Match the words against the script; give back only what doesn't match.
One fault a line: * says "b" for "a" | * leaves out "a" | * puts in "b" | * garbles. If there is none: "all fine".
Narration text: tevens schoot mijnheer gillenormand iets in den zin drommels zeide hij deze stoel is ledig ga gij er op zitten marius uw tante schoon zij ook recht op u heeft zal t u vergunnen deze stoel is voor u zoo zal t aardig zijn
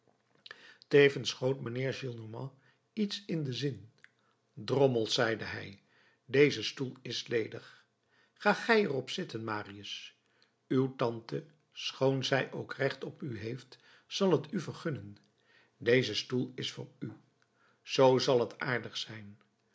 all fine